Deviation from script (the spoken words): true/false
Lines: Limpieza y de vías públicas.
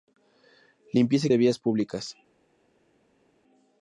false